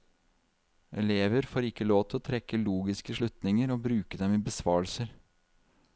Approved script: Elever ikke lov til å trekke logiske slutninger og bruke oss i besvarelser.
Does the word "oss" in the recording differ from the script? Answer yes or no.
yes